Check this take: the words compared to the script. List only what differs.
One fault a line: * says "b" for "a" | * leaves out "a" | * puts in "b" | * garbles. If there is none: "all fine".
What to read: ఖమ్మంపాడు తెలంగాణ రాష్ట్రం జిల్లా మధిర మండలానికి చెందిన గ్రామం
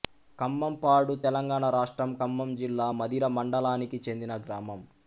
* puts in "ఖమ్మం"